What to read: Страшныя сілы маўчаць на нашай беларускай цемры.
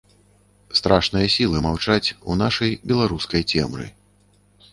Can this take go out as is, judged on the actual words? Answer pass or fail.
fail